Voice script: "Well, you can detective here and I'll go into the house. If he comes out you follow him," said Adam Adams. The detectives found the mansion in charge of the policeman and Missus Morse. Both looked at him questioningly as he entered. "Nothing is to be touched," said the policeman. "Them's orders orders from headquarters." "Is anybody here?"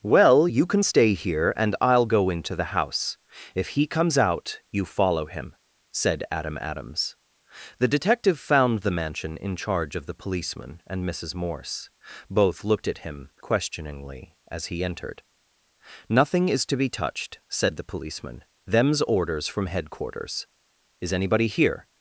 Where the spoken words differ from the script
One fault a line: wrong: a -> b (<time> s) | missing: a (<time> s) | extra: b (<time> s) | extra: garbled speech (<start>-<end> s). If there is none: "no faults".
wrong: detective -> stay (0.8 s)
wrong: detectives -> detective (7.9 s)
missing: orders (19.5 s)